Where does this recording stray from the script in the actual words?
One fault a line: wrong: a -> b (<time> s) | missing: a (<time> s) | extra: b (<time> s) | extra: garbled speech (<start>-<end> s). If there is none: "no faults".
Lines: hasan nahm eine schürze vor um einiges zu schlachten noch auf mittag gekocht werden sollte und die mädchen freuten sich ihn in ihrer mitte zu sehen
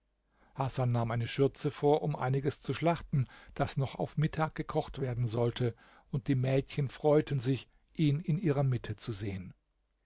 extra: das (3.5 s)